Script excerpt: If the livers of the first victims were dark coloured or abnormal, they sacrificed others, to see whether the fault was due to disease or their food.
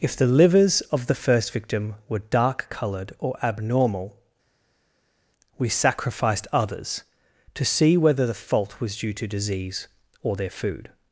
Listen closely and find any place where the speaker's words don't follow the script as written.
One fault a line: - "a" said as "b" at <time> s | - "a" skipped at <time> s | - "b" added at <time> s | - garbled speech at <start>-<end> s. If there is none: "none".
- "victims" said as "victim" at 1.5 s
- "they" said as "we" at 5.6 s